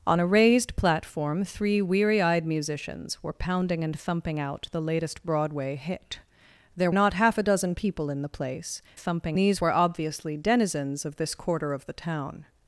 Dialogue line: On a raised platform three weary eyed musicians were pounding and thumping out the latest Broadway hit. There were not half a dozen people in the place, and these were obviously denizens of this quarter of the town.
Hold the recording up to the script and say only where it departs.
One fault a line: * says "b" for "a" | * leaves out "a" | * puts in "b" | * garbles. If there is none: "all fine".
* leaves out "were"
* says "thumping" for "and"